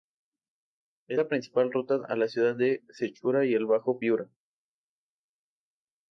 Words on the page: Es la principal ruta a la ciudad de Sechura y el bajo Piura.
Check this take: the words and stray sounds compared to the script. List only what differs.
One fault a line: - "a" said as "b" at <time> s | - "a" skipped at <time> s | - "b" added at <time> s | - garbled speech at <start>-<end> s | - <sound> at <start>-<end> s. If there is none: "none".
none